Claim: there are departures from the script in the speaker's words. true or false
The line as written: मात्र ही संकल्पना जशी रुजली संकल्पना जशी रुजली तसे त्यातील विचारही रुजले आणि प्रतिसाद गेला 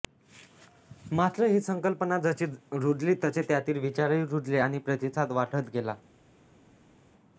true